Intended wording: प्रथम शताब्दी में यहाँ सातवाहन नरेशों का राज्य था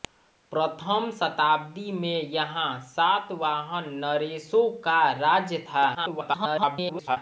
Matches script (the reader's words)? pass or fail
fail